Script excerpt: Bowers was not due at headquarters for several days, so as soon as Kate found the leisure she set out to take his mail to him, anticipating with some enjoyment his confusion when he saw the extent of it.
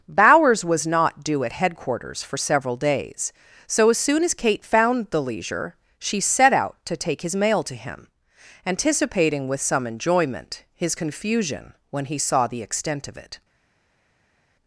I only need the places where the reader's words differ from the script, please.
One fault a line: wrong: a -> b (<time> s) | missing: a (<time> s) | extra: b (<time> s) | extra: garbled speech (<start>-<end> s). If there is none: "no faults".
no faults